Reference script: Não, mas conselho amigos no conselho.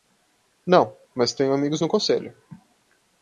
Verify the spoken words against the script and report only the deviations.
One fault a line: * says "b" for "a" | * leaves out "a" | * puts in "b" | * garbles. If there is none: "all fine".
* says "tenho" for "conselho"